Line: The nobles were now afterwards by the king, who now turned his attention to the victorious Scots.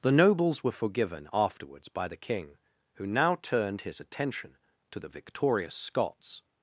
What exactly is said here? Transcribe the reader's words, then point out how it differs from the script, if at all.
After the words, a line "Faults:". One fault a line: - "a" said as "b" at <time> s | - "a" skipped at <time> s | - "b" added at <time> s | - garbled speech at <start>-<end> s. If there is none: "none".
The nobles were forgiven afterwards by the king, who now turned his attention to the victorious Scots.
Faults:
- "now" said as "forgiven" at 0.7 s